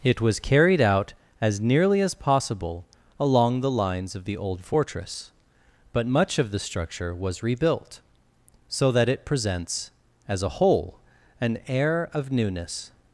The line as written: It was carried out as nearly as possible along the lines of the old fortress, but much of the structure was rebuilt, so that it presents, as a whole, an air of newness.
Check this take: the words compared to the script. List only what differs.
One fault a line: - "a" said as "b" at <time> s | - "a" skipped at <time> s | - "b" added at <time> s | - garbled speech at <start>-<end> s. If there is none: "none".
none